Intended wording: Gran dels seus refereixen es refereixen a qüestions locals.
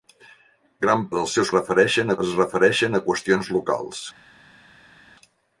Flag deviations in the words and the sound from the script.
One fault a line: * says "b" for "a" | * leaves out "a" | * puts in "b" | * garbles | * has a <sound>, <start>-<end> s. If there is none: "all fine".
all fine